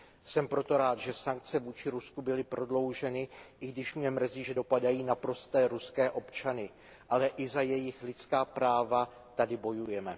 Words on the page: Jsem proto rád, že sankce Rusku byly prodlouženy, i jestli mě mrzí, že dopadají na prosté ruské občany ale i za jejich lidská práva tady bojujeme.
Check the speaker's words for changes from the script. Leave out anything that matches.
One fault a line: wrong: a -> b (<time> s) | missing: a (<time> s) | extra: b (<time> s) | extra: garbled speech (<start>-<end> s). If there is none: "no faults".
extra: vůči (1.6 s)
wrong: jestli -> když (3.7 s)